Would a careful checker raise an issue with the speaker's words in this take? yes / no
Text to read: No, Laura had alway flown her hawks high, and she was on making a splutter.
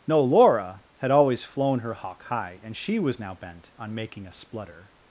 yes